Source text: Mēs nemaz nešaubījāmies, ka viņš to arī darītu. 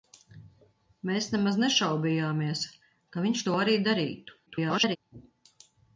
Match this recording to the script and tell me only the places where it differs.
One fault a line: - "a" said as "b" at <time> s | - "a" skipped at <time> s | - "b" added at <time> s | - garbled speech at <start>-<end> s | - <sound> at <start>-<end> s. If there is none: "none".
- garbled speech at 4.5-5.0 s